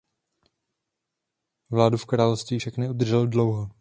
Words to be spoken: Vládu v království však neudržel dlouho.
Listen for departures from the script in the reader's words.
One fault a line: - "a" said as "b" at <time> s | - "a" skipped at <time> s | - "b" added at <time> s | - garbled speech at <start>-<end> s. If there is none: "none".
none